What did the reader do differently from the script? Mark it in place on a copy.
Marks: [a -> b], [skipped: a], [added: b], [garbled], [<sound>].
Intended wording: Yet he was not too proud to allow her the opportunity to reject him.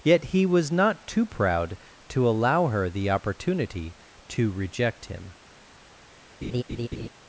Yet he was not too proud to allow her the opportunity to reject him. [laugh]